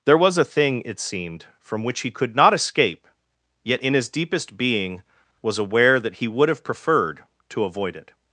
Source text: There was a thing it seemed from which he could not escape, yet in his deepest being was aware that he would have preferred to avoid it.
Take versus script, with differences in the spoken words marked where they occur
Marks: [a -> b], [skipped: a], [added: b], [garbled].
There was a thing it seemed from which he could not escape, yet in his deepest being was aware that he would have preferred to avoid it.